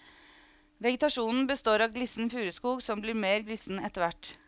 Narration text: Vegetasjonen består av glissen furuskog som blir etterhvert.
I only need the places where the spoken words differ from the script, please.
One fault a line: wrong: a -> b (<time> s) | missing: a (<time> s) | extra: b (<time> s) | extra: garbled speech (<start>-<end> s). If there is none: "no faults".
extra: mer glissen (3.1 s)